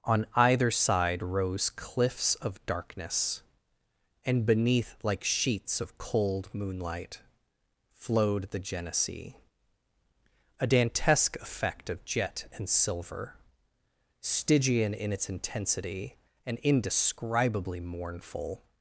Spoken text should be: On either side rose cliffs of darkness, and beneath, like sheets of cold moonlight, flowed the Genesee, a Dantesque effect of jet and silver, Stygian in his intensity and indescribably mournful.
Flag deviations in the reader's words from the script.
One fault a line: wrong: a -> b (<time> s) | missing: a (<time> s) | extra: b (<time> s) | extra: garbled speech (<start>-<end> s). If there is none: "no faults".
wrong: his -> its (15.1 s)